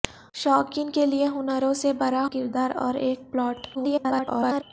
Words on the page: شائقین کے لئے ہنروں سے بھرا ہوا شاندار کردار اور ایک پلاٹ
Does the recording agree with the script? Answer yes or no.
no